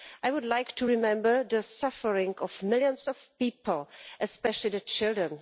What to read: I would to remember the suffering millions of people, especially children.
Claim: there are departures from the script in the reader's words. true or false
true